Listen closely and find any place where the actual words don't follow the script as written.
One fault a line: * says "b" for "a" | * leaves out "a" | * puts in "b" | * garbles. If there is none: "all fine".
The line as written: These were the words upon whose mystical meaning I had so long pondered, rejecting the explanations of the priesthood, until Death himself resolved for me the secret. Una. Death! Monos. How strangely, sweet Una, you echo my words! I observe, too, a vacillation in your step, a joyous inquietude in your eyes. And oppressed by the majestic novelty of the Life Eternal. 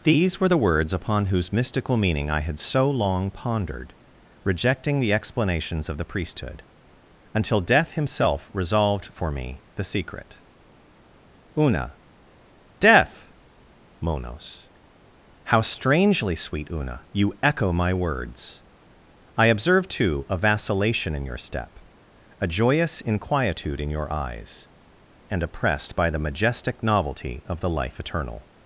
all fine